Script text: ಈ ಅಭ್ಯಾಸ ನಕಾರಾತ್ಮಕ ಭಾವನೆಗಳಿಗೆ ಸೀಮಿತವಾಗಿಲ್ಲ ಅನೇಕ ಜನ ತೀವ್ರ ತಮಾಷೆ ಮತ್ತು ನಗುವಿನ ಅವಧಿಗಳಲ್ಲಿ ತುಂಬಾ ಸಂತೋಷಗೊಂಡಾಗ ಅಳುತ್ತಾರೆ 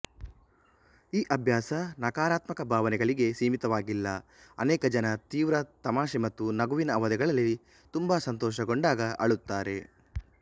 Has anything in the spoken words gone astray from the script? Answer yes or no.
no